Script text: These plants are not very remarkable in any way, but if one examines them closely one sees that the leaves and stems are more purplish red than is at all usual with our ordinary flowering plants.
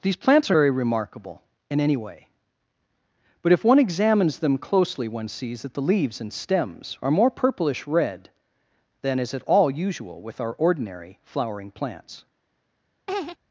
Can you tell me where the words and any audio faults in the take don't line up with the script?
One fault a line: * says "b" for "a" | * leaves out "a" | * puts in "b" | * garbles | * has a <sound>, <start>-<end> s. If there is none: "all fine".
* leaves out "not"
* has a laugh, 13.1-13.4 s